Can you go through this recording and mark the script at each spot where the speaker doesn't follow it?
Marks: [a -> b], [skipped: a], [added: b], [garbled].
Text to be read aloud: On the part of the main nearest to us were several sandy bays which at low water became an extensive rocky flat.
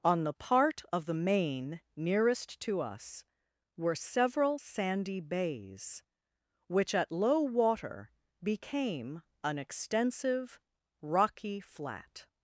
On the part of the main nearest to us were several sandy bays which at low water became an extensive rocky flat.